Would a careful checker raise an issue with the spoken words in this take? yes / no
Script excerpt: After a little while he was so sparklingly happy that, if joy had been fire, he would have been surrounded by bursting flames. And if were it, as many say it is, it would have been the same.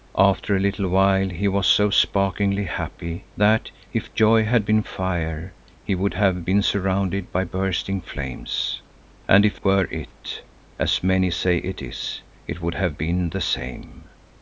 no